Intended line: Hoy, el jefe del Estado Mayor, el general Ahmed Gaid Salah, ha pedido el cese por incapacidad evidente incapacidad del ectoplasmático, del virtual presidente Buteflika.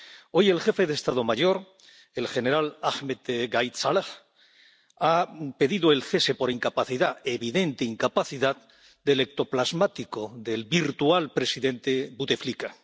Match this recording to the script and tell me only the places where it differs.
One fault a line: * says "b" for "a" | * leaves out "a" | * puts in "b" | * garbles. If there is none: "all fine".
all fine